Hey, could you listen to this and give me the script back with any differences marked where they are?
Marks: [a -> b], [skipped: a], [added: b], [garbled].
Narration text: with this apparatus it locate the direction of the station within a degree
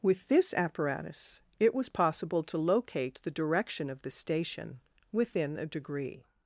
with this apparatus it [added: was possible to] locate the direction of the station within a degree